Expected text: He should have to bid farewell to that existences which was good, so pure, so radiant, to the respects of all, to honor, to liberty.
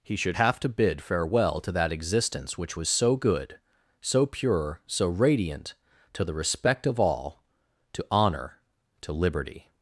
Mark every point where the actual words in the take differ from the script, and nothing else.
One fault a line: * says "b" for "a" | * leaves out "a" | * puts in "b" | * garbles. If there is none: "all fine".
* says "existence" for "existences"
* puts in "so"
* says "respect" for "respects"